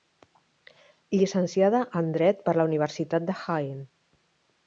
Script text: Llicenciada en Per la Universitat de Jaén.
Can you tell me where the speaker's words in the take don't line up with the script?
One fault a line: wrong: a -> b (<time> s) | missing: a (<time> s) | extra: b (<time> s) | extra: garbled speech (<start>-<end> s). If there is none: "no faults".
extra: Dret (2.2 s)